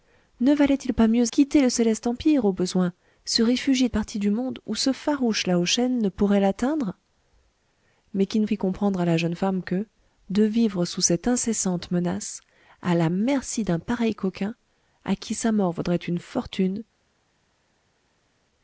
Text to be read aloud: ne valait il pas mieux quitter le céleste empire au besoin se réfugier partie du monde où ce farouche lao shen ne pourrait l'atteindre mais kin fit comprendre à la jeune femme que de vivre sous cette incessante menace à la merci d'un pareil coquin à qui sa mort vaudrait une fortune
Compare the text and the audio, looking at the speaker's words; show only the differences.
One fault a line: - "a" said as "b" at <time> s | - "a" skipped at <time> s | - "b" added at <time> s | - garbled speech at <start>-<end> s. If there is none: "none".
none